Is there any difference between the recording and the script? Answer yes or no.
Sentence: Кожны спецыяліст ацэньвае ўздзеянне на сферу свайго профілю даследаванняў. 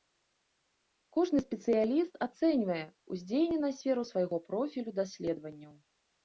no